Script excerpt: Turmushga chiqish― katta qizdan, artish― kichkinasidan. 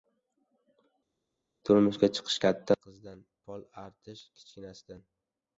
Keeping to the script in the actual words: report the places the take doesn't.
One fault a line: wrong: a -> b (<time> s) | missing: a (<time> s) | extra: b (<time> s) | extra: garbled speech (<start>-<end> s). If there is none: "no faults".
extra: pol (3.4 s)